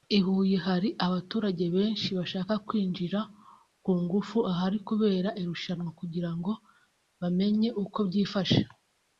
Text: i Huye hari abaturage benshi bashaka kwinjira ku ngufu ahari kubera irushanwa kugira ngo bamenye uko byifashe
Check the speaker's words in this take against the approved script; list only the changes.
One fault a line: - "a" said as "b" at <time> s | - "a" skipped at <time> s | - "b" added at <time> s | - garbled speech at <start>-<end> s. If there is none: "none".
none